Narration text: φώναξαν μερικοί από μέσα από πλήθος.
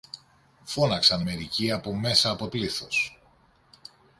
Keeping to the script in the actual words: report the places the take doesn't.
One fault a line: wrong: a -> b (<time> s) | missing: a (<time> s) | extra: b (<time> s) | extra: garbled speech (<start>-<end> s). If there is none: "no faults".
no faults